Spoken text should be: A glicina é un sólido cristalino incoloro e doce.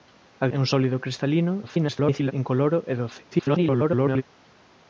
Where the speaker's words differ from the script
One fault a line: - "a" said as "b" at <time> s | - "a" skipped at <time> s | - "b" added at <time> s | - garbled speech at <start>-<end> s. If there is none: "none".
- "glicina" skipped at 0.5 s
- garbled speech at 1.6-2.3 s
- garbled speech at 3.3-4.2 s